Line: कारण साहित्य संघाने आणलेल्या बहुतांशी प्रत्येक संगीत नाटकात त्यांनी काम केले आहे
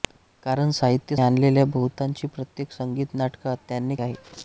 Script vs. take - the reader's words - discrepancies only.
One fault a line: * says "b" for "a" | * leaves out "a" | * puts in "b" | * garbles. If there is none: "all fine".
* leaves out "संघाने"
* leaves out "काम केले"